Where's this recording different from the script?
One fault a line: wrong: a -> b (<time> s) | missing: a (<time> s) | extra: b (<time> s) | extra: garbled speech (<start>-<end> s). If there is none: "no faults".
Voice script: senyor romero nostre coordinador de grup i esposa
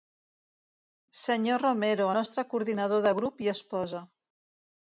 no faults